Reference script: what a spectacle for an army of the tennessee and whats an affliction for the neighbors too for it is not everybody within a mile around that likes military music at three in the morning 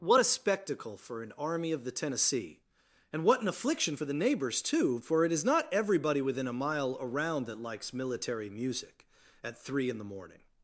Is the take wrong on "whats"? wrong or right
wrong